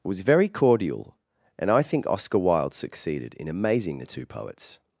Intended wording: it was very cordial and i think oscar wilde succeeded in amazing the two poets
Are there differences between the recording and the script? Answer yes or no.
yes